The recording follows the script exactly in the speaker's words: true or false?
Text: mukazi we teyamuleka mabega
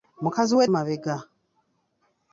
false